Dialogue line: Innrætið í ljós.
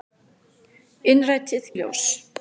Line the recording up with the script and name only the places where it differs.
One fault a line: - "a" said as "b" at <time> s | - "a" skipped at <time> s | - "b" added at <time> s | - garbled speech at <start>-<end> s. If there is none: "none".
none